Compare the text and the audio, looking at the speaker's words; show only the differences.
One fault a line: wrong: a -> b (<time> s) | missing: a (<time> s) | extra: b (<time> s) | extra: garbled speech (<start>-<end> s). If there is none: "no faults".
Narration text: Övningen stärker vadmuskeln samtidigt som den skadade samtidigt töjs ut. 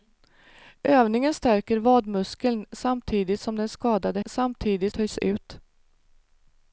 no faults